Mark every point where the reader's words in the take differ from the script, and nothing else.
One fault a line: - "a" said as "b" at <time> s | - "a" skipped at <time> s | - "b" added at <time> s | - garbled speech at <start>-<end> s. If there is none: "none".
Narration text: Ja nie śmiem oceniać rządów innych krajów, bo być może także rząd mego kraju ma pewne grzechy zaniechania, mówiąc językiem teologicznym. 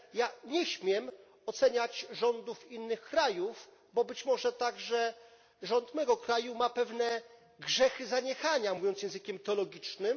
none